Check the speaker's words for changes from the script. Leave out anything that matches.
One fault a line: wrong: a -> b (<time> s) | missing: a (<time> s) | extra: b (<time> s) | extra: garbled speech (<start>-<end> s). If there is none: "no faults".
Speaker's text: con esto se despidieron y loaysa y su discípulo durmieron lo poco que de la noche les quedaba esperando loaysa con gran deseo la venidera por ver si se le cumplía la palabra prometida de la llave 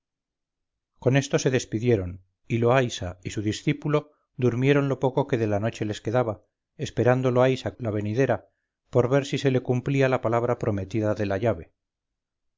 missing: con gran deseo (7.8 s)